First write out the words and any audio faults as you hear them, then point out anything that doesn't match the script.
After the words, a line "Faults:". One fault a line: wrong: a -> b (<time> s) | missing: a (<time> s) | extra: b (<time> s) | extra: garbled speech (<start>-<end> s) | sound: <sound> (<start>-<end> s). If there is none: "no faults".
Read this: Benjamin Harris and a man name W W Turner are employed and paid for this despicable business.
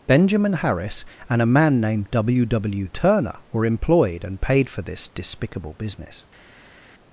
Benjamin Harris and a man named W W Turner were employed and paid for this despicable business.
Faults:
wrong: name -> named (1.8 s)
wrong: are -> were (3.5 s)